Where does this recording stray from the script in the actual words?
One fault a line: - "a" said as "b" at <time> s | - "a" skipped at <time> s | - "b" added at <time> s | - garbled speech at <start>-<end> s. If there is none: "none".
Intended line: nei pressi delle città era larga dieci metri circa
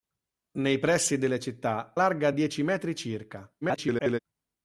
- "era" skipped at 1.9 s
- garbled speech at 3.6-4.2 s